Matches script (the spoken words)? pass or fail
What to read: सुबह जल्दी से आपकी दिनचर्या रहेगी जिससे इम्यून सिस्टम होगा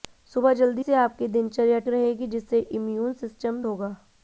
pass